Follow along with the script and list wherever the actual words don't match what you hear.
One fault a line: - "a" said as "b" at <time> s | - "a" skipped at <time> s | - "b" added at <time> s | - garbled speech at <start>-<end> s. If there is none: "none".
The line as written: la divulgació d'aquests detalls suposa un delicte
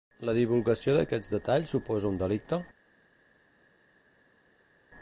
none